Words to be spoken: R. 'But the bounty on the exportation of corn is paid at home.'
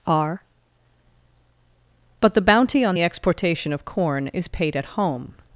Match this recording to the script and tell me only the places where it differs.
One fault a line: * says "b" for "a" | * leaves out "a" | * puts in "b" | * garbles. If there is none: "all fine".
all fine